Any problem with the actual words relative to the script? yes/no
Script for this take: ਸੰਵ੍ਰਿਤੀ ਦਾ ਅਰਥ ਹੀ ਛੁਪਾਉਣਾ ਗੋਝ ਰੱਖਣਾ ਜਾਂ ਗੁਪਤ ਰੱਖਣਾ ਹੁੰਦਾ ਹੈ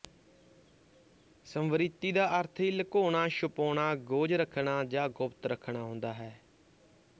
yes